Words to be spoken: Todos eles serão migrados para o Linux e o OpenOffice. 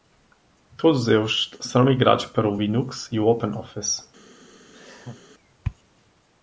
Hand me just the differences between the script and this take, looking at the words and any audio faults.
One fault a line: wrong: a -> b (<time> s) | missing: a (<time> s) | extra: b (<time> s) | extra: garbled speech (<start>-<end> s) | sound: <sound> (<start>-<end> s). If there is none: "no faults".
sound: laugh (4.7-5.2 s)